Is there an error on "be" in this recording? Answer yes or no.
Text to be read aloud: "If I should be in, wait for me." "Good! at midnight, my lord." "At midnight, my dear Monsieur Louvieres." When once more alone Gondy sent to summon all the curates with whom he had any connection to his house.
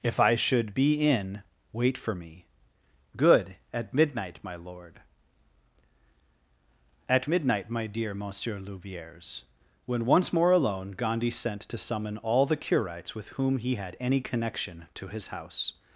no